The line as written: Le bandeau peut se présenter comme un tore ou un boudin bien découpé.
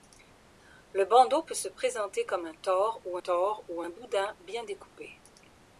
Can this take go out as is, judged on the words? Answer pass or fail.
fail